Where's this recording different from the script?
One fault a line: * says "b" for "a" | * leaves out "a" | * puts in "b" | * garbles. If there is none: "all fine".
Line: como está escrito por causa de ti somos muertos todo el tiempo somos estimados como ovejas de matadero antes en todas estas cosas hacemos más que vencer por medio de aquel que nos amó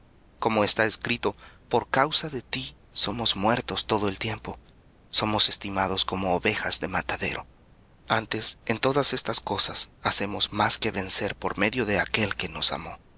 all fine